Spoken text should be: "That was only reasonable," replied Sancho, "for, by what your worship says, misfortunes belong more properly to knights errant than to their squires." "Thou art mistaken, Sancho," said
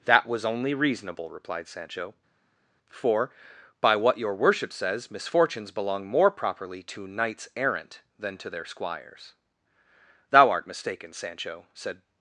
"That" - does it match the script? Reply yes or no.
yes